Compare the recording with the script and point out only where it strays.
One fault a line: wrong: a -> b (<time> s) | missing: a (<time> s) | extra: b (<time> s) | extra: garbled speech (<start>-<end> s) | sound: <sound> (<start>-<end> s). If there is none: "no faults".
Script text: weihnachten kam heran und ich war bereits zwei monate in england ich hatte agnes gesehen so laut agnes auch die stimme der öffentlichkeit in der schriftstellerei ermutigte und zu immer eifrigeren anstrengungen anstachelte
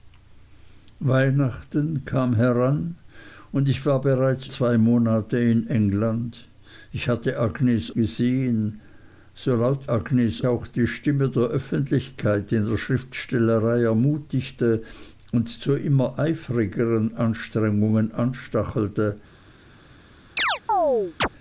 sound: chirp (20.4-21.3 s)